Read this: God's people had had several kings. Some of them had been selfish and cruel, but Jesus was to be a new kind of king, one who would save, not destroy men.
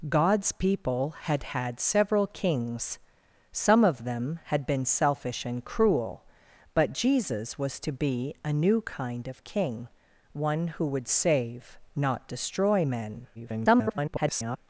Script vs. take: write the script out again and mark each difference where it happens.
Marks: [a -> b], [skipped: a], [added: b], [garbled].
God's people had had several kings. Some of them had been selfish and cruel, but Jesus was to be a new kind of king, one who would save, not destroy men. [garbled]